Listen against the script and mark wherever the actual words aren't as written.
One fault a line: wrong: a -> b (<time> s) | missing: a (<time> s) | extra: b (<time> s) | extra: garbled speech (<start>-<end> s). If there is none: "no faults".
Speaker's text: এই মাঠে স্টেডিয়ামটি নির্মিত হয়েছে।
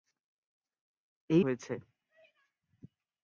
missing: মাঠে স্টেডিয়ামটি নির্মিত (1.4 s)